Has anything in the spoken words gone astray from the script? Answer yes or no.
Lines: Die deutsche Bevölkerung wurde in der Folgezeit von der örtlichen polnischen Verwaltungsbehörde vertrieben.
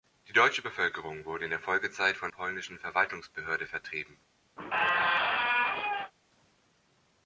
yes